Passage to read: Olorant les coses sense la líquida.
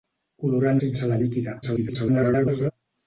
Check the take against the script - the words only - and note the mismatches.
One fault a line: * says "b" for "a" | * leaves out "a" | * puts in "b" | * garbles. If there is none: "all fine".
* leaves out "les coses"
* garbles